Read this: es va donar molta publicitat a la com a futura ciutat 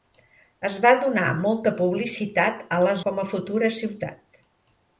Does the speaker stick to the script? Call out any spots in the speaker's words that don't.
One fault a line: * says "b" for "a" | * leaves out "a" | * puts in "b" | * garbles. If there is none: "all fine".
all fine